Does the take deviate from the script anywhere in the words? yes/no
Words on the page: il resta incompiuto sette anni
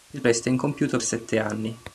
no